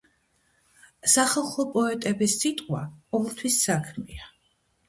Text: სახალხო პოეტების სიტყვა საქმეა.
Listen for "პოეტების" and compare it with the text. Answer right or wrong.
right